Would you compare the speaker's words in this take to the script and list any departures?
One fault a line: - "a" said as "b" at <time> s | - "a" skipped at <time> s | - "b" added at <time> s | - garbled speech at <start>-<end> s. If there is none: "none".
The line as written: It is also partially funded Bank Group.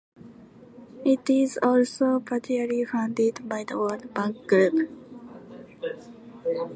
- "by the World" added at 3.5 s